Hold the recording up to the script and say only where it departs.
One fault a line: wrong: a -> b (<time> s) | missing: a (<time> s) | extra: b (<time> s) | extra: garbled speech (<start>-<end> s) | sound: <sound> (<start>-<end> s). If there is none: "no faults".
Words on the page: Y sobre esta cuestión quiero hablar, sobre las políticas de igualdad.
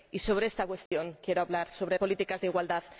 sound: dropout (0.9-0.9 s)
missing: las (2.0 s)